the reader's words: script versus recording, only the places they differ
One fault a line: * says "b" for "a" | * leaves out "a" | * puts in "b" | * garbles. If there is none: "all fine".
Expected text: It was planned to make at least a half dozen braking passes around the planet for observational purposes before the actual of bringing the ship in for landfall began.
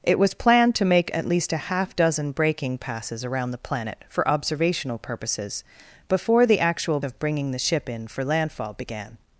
all fine